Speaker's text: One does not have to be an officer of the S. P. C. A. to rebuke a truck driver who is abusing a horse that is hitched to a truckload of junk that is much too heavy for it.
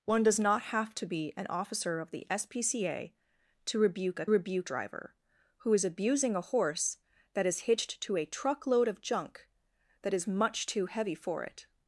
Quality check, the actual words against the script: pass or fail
fail